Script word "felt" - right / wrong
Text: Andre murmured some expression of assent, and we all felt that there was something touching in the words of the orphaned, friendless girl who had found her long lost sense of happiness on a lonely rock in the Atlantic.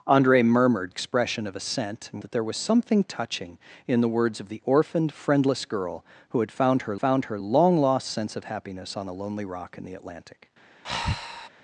wrong